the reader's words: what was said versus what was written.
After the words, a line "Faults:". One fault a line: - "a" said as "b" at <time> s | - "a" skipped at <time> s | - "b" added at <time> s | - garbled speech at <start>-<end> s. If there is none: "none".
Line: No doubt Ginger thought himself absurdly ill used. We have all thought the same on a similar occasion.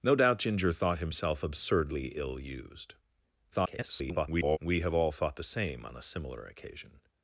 No doubt Ginger thought himself absurdly ill used. [garbled] We have all thought the same on a similar occasion.
Faults:
- garbled speech at 3.5-4.6 s